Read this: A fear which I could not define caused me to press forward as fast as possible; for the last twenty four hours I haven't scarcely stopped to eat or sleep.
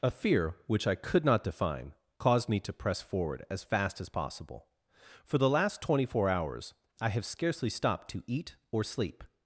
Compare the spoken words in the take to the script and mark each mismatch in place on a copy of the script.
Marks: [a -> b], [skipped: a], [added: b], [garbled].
A fear which I could not define caused me to press forward as fast as possible; for the last twenty four hours I [haven't -> have] scarcely stopped to eat or sleep.